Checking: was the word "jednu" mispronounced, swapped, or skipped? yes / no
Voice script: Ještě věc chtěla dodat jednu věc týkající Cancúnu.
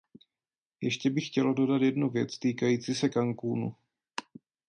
no